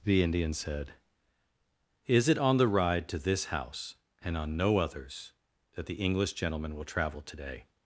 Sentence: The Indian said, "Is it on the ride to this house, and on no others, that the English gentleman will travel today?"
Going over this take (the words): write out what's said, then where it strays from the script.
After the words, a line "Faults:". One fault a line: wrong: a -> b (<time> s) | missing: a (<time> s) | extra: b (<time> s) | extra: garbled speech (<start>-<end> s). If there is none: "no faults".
The Indian said, "Is it on the ride to this house, and on no others, that the English gentleman will travel today?"
Faults:
no faults